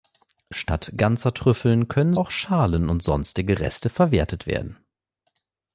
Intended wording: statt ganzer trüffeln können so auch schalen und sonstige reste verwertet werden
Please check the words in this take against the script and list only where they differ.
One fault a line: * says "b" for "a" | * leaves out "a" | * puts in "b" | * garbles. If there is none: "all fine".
* leaves out "so"